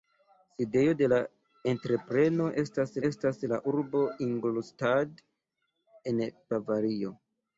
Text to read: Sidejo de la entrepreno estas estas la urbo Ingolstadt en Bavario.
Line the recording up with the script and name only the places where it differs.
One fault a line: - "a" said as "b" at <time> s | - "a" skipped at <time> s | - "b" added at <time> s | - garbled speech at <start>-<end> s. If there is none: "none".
none